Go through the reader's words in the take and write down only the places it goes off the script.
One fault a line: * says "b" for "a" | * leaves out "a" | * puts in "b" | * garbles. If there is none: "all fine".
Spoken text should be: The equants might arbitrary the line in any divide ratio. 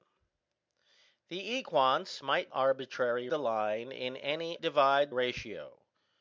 all fine